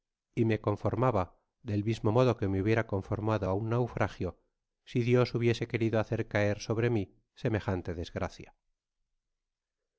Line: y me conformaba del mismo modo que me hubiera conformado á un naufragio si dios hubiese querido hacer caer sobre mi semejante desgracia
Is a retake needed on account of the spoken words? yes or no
no